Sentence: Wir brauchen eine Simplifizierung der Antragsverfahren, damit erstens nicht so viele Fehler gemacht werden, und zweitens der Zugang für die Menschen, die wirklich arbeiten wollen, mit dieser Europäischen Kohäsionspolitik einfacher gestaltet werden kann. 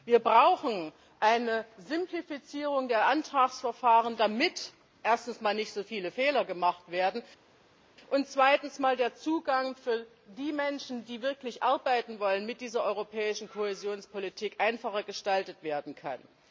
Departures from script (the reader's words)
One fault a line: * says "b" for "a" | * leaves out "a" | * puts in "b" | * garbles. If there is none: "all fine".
all fine